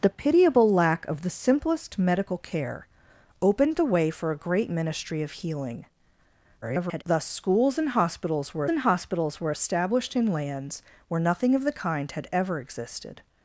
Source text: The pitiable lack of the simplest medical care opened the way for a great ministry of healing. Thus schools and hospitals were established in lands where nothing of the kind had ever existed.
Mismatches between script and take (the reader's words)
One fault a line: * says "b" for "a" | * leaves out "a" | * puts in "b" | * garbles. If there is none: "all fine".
* garbles
* puts in "and hospitals were"